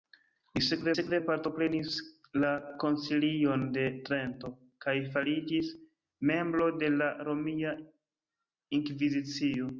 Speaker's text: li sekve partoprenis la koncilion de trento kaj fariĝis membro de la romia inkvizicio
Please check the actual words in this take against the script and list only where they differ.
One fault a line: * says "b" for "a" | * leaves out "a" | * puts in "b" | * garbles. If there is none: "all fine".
* puts in "sekve"